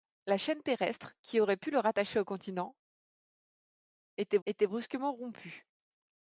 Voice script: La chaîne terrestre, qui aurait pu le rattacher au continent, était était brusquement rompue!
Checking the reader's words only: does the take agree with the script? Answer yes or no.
yes